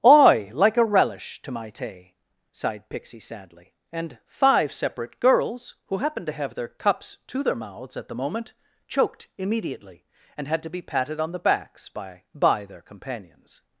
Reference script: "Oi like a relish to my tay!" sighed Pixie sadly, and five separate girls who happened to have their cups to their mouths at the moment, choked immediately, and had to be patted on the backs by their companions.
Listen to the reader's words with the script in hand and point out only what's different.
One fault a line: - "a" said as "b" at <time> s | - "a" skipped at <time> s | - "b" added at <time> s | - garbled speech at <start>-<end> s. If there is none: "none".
- "by" added at 12.3 s